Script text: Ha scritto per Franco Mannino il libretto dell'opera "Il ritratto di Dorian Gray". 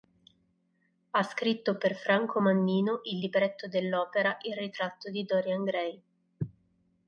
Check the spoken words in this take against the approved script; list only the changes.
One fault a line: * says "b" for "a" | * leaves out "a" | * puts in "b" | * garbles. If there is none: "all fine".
all fine